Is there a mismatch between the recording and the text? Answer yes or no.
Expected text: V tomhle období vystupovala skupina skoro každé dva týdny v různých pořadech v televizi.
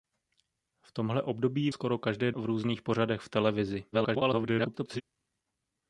yes